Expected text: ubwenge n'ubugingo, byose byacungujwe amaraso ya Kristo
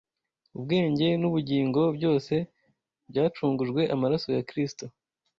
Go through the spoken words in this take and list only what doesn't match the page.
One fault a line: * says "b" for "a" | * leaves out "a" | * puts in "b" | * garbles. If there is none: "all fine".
all fine